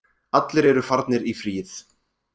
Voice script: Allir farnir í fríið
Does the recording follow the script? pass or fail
fail